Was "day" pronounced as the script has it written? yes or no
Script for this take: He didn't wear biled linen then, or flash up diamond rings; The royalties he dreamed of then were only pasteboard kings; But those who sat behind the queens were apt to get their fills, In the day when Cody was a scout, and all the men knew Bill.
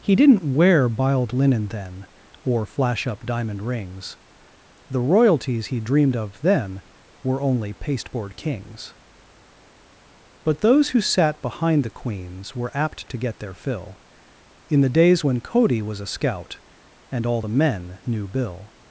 no